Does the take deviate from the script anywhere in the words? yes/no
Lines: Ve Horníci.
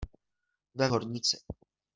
no